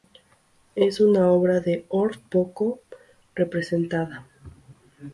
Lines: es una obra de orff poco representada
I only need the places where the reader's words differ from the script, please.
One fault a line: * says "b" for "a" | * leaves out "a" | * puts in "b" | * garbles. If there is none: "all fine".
all fine